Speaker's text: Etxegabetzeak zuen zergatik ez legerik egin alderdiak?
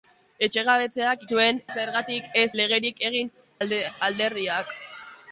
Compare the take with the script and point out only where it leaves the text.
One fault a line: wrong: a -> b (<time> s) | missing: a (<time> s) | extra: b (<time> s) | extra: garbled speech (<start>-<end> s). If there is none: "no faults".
no faults